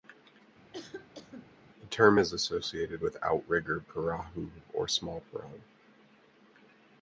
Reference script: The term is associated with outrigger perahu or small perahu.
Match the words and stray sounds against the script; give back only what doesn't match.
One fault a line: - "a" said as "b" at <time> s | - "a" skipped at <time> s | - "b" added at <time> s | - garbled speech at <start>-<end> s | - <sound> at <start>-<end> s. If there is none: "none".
- cough at 0.7-1.5 s